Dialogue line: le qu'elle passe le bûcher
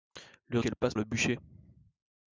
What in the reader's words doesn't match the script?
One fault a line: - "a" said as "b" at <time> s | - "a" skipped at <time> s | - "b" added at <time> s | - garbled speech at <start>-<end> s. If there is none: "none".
none